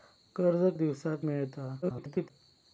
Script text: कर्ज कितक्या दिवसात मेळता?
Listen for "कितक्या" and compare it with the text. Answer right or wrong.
wrong